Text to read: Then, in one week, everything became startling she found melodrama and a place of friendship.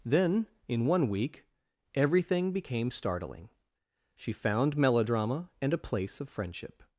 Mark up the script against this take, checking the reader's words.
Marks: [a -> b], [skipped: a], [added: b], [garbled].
Then, in one week, everything became startling she found melodrama and a place of friendship.